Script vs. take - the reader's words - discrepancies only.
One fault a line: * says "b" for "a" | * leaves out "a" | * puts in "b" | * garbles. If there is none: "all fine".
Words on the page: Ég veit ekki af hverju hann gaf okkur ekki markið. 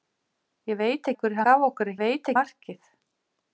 * leaves out "ekki"
* leaves out "hann"
* says "veit" for "ekki"